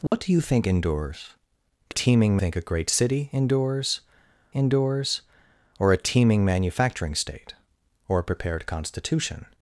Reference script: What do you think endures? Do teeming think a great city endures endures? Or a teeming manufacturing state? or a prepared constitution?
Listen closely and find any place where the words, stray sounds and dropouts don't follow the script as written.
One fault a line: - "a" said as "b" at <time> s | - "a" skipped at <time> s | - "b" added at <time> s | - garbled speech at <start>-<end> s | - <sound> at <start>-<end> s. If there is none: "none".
- dropout at 0.1-0.1 s